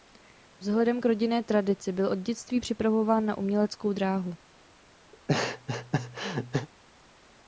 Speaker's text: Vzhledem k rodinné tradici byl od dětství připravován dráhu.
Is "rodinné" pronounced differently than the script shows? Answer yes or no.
no